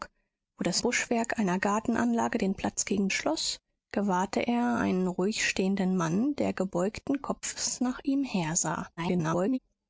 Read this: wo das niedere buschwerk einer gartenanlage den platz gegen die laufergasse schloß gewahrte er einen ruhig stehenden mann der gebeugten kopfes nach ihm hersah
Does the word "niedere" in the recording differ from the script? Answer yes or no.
yes